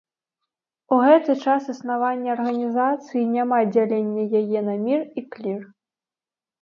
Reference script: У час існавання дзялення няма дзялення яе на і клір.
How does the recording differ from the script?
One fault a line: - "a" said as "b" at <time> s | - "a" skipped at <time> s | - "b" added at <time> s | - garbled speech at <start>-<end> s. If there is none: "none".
- "гэты" added at 1.1 s
- "дзялення" said as "арганізацыі" at 2.4 s
- "мір" added at 4.9 s